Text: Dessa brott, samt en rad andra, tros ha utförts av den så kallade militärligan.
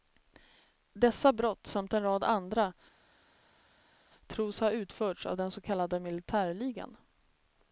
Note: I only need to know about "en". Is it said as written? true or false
true